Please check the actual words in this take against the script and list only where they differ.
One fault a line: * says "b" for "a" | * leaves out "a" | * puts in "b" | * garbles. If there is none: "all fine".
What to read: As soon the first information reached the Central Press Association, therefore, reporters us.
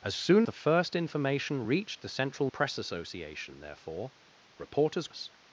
all fine